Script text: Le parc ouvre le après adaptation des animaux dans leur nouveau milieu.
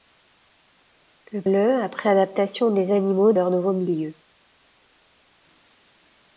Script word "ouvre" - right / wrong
wrong